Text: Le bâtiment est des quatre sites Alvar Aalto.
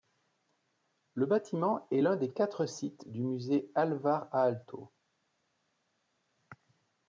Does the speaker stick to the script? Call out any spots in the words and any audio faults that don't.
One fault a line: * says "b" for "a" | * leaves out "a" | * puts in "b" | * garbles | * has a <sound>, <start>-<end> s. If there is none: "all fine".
* puts in "l'un"
* puts in "du musée"